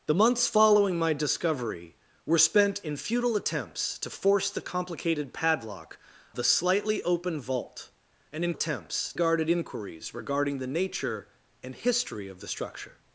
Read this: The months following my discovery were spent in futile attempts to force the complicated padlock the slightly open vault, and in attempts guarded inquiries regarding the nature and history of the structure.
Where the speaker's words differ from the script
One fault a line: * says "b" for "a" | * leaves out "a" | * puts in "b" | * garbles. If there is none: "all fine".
all fine